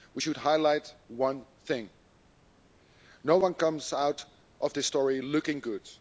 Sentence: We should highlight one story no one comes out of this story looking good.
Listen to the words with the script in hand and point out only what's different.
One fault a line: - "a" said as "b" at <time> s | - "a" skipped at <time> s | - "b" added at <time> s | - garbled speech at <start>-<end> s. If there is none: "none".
- "story" said as "thing" at 1.7 s